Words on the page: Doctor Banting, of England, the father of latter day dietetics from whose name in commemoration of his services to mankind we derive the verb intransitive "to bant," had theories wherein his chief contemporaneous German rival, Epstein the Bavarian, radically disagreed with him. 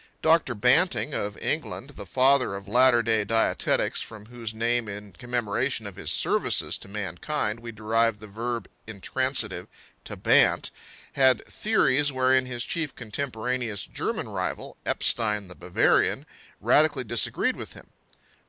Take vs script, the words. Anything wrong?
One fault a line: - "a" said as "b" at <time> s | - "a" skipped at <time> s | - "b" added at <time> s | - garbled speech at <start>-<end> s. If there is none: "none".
none